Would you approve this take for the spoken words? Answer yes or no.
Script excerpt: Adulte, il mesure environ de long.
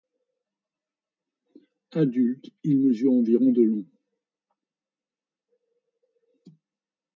yes